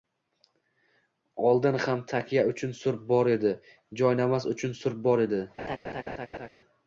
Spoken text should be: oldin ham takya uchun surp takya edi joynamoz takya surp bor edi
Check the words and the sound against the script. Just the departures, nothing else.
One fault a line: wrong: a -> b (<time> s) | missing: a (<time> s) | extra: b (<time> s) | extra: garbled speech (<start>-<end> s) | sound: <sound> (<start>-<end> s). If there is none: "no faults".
wrong: takya -> bor (3.1 s)
wrong: takya -> uchun (4.6 s)
sound: laugh (5.6-6.5 s)